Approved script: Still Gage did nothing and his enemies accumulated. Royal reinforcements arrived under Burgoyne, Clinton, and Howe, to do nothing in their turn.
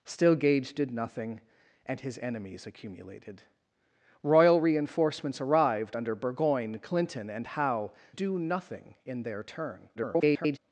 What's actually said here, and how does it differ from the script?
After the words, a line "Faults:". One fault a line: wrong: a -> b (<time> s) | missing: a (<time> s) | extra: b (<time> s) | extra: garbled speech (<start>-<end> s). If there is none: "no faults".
Still Gage did nothing and his enemies accumulated. Royal reinforcements arrived under Burgoyne, Clinton, and Howe, do nothing in their turn. [garbled]
Faults:
missing: to (7.9 s)
extra: garbled speech (10.0-10.6 s)